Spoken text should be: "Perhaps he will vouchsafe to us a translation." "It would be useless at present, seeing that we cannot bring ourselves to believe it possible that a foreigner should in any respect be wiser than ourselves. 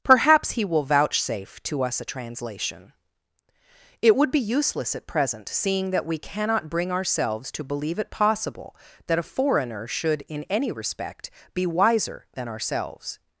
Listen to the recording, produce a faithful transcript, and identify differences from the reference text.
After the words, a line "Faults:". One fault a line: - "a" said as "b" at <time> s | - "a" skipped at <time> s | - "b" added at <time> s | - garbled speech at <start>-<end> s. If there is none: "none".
"Perhaps he will vouchsafe to us a translation." "It would be useless at present, seeing that we cannot bring ourselves to believe it possible that a foreigner should in any respect be wiser than ourselves.
Faults:
none